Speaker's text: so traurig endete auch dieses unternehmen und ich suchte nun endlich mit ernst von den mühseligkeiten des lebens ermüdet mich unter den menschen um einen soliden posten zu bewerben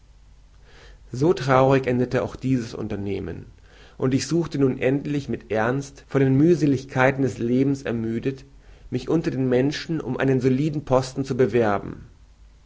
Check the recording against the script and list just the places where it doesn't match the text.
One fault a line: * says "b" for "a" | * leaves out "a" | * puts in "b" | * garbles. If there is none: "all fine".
all fine